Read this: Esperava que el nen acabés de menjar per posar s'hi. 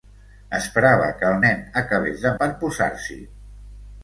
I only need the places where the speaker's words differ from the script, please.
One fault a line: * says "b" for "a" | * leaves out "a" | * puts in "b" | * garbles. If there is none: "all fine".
* leaves out "menjar"